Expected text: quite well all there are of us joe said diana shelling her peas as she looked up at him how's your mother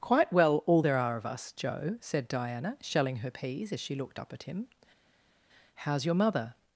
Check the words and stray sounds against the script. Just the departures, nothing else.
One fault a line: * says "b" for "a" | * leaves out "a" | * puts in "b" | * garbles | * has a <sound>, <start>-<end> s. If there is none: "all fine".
all fine